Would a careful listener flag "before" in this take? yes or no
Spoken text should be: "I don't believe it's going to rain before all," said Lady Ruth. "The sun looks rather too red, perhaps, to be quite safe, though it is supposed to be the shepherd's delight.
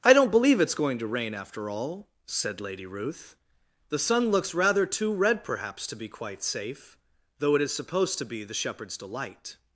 yes